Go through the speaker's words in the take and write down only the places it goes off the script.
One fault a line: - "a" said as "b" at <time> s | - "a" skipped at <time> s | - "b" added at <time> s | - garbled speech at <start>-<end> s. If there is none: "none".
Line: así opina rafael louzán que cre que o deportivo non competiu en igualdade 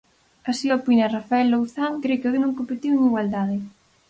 - "que" skipped at 1.9 s
- "deportivo" skipped at 2.3 s